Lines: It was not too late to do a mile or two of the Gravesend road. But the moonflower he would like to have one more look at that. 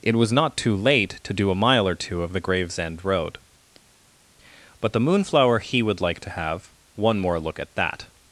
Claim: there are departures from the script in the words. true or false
false